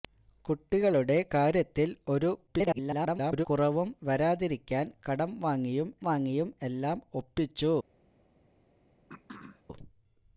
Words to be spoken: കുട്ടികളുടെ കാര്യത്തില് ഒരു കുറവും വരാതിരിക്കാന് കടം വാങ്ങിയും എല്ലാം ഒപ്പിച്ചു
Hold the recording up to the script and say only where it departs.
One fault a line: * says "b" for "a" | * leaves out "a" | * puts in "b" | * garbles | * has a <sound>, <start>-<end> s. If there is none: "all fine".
* garbles
* puts in "വാങ്ങിയും"
* has a throat clearing, 9.1-9.6 s